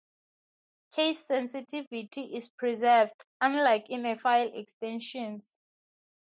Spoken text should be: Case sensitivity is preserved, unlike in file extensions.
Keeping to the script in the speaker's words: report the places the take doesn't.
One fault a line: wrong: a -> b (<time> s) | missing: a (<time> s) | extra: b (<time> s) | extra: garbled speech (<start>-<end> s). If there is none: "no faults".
no faults